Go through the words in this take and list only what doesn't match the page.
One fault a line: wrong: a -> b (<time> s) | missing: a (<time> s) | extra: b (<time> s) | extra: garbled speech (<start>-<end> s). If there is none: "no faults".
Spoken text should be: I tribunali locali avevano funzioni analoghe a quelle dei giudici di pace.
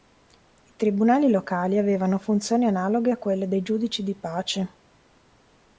no faults